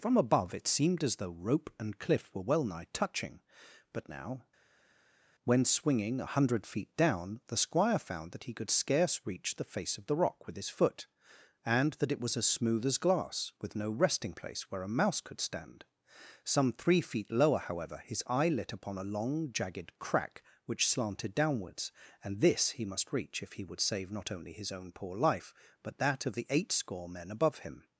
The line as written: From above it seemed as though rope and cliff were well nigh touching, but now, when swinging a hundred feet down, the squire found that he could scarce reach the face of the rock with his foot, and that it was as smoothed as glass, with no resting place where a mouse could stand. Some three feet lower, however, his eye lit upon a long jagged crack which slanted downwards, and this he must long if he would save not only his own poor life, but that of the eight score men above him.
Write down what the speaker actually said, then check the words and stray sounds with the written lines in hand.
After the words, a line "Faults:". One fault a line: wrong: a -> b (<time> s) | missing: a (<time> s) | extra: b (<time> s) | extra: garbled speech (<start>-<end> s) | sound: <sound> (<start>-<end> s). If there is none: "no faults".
From above it seemed as though rope and cliff were well nigh touching, but now, when swinging a hundred feet down, the squire found that he could scarce reach the face of the rock with his foot, and that it was as smooth as glass, with no resting place where a mouse could stand. Some three feet lower, however, his eye lit upon a long jagged crack which slanted downwards, and this he must reach if he would save not only his own poor life, but that of the eight score men above him.
Faults:
wrong: smoothed -> smooth (12.5 s)
wrong: long -> reach (23.1 s)